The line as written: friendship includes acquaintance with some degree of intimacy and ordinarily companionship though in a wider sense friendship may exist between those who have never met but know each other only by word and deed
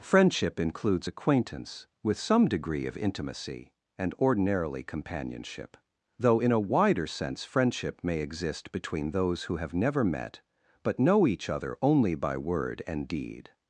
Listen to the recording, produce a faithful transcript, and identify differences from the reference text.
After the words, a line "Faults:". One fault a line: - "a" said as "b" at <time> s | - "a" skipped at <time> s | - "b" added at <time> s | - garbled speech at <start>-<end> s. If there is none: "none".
friendship includes acquaintance with some degree of intimacy and ordinarily companionship though in a wider sense friendship may exist between those who have never met but know each other only by word and deed
Faults:
none